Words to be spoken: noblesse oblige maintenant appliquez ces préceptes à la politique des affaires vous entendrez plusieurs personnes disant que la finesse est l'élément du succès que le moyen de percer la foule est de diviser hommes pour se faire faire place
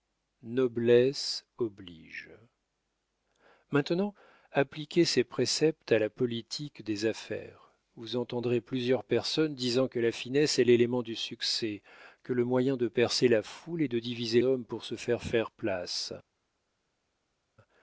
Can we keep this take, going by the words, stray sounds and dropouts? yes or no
yes